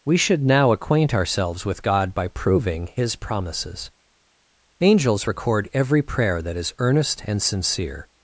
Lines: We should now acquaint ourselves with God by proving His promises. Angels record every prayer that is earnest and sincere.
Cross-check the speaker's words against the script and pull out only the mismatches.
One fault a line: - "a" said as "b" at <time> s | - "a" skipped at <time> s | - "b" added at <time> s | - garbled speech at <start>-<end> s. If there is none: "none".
none